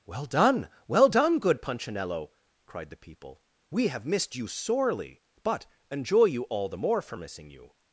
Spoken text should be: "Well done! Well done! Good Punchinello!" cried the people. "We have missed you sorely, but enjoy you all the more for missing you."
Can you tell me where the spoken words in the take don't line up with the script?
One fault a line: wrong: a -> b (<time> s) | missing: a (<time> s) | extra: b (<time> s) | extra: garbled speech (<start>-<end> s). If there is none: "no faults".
no faults